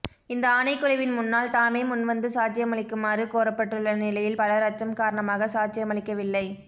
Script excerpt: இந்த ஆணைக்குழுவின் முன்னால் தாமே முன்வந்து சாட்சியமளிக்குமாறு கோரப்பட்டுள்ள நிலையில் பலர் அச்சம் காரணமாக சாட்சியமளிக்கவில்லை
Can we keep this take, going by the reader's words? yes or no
yes